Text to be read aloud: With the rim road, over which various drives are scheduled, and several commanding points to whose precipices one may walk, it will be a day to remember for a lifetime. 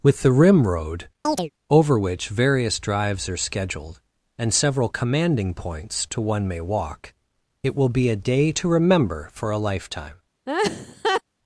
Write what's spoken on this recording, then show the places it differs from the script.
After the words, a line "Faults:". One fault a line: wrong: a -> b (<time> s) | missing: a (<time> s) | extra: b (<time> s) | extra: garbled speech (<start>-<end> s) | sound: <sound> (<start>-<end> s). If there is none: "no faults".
With the rim road, over which various drives are scheduled, and several commanding points to one may walk, it will be a day to remember for a lifetime.
Faults:
sound: chirp (1.2-1.5 s)
missing: whose precipices (6.2 s)
sound: laugh (10.5-11.2 s)